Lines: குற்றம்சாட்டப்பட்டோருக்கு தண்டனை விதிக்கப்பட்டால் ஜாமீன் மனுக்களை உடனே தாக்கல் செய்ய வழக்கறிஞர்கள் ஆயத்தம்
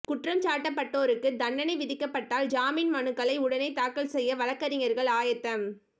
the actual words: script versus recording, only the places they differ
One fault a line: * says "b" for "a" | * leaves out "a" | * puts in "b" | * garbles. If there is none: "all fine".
all fine